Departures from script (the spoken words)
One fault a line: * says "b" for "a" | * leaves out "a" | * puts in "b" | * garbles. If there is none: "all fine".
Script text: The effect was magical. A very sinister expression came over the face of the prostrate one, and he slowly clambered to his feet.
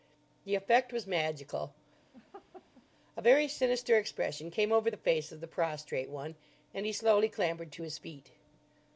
all fine